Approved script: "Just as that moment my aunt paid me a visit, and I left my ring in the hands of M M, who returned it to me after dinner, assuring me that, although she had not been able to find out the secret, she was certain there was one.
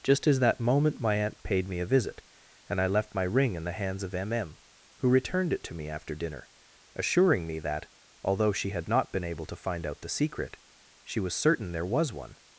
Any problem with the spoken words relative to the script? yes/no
no